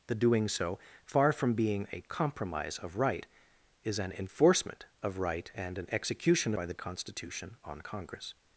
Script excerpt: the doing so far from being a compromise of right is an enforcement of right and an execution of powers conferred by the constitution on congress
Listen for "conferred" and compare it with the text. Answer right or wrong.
wrong